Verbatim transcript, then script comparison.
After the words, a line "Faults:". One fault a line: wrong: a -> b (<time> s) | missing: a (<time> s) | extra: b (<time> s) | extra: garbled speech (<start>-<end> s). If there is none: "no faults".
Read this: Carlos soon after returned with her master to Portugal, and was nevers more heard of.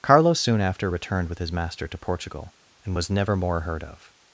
Carlos soon after returned with his master to Portugal, and was never more heard of.
Faults:
wrong: her -> his (1.4 s)
wrong: nevers -> never (3.1 s)